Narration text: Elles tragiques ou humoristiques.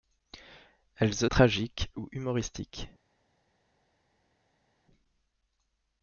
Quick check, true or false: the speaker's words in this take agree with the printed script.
true